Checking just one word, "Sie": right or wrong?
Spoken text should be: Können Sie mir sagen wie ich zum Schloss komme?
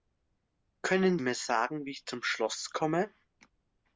wrong